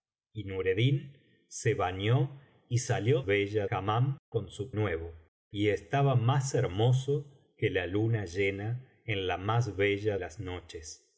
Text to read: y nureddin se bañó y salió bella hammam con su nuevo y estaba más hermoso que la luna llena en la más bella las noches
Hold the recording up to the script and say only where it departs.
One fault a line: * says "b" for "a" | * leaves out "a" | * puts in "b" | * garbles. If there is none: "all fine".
all fine